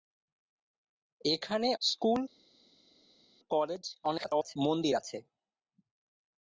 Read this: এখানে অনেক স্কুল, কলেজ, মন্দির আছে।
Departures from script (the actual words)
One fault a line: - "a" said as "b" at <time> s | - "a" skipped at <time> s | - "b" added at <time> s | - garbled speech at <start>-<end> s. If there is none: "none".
- "অনেক" skipped at 1.7 s
- garbled speech at 4.0-4.6 s